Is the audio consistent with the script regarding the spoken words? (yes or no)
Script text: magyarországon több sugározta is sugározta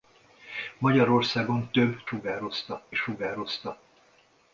yes